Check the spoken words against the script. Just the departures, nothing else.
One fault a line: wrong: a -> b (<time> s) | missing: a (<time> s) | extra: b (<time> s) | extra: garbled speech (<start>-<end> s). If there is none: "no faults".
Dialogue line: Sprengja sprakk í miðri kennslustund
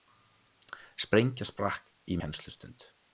missing: miðri (2.2 s)